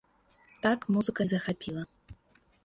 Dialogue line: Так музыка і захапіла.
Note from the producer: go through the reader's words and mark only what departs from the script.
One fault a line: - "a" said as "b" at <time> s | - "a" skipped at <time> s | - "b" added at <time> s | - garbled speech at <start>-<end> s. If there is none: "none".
none